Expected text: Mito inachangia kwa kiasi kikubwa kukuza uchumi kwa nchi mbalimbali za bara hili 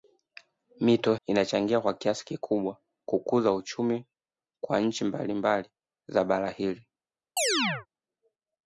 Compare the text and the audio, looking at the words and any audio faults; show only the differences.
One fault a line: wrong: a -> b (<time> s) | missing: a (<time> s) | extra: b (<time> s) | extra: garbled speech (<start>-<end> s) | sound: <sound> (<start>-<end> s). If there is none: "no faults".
sound: chirp (7.4-7.9 s)